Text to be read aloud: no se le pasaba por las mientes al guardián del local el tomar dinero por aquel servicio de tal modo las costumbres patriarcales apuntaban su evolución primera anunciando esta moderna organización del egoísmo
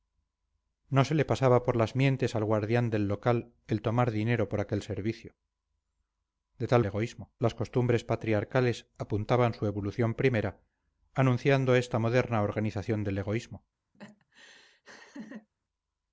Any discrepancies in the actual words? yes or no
yes